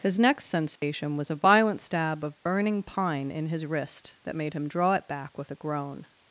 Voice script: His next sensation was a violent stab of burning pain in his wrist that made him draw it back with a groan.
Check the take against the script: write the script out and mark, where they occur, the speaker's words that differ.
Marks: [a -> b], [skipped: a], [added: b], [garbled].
His next sensation was a violent stab of burning [pain -> pine] in his wrist that made him draw it back with a groan.